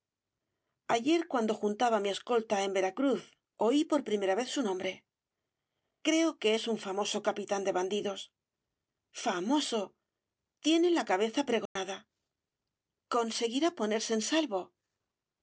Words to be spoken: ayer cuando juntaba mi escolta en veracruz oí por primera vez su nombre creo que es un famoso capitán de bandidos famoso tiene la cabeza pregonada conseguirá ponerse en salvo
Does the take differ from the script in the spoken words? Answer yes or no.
no